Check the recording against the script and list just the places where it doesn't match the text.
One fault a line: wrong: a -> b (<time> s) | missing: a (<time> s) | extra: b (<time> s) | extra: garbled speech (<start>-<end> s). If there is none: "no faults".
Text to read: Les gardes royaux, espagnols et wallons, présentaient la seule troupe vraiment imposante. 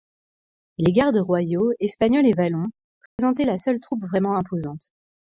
no faults